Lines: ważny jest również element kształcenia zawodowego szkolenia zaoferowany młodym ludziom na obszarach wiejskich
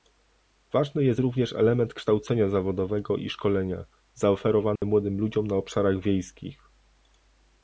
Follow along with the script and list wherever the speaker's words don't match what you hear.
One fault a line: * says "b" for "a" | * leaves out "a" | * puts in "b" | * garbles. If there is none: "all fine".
* puts in "i"